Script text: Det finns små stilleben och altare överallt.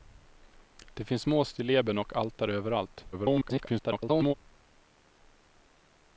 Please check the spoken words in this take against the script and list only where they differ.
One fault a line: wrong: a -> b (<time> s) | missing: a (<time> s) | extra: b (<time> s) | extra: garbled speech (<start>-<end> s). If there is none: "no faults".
extra: garbled speech (3.1-4.3 s)